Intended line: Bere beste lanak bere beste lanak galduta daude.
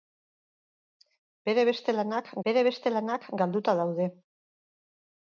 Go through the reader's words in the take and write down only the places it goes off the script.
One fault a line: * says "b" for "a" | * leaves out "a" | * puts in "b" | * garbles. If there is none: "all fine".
all fine